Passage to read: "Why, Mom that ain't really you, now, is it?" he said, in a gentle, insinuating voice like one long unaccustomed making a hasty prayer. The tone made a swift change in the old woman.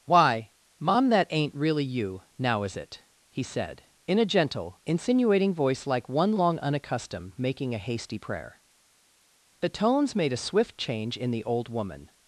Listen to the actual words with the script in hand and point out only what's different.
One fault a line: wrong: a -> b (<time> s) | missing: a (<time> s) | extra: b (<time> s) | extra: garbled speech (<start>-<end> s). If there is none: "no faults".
wrong: tone -> tones (9.7 s)